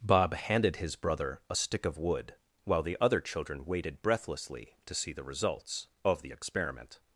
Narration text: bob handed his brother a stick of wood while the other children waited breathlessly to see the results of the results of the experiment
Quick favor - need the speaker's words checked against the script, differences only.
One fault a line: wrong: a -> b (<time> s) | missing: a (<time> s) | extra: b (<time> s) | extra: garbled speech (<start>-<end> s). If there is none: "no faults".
missing: results of the (6.3 s)